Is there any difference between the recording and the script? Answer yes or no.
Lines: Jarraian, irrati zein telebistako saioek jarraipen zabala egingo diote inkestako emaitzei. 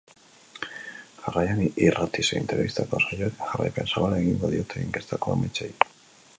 no